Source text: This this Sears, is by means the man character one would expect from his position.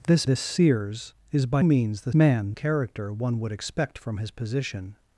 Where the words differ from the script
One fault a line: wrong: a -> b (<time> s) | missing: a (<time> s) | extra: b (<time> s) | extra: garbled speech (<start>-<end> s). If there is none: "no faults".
no faults